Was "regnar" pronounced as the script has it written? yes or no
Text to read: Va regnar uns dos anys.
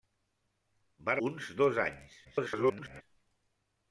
no